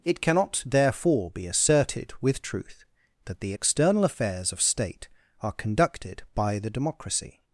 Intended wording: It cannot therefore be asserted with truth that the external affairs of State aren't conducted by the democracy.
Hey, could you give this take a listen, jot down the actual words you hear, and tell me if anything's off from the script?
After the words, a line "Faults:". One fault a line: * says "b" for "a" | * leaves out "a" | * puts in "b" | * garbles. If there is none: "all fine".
It cannot therefore be asserted with truth that the external affairs of State are conducted by the democracy.
Faults:
* says "are" for "aren't"